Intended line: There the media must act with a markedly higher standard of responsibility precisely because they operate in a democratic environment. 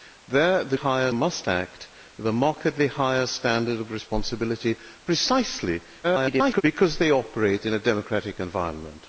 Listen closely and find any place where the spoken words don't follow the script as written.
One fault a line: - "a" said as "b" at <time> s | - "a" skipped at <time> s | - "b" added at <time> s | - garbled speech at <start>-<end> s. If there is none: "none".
- "media" said as "higher" at 0.7 s
- garbled speech at 6.0-6.6 s